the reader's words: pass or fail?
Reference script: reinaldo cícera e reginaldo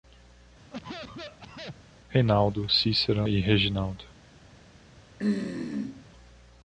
pass